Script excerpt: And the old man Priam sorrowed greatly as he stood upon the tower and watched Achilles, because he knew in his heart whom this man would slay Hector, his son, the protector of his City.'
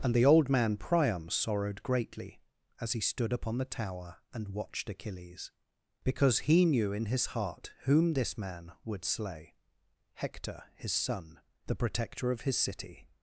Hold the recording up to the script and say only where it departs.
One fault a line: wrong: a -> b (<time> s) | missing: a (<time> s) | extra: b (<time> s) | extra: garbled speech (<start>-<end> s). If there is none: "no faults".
no faults